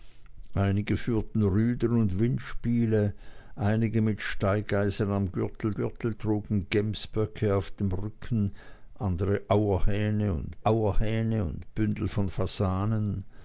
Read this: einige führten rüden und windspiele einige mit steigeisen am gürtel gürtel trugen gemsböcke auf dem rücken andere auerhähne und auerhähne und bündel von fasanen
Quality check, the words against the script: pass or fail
pass